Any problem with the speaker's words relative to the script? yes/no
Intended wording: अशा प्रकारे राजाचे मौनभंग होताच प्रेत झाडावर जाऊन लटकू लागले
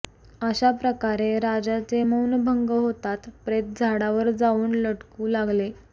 no